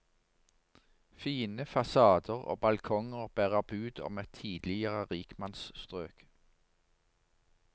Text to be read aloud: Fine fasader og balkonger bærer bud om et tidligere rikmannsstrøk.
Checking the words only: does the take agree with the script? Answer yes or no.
yes